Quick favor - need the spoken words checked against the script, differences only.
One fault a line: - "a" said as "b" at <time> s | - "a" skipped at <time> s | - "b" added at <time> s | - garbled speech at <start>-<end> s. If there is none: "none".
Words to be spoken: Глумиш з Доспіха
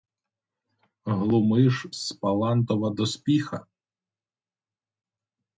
- "Паллантова" added at 2.1 s